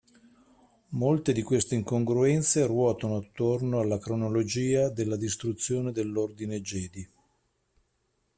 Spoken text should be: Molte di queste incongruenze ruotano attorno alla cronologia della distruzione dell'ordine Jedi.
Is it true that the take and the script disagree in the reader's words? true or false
false